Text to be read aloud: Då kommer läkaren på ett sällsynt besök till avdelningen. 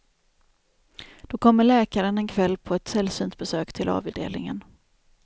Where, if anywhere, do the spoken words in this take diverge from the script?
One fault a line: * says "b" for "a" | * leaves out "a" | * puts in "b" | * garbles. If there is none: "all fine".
* puts in "en kväll"